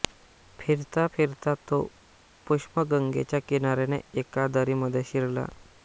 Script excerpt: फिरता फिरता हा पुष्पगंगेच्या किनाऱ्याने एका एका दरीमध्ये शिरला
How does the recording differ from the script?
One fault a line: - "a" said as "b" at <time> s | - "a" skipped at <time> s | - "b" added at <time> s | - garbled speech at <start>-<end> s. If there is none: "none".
- "हा" said as "तो" at 1.7 s
- "एका" skipped at 4.5 s